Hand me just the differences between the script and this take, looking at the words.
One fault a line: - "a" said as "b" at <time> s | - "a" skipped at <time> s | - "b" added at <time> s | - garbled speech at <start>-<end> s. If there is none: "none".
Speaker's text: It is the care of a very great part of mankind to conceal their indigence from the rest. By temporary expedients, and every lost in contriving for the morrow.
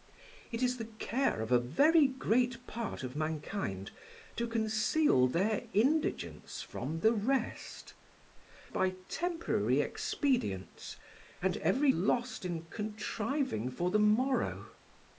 none